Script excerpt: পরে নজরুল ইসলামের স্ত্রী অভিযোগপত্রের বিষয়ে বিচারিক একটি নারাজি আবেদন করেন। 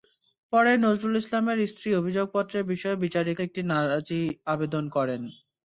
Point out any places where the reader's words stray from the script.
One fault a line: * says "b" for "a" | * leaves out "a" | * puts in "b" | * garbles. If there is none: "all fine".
all fine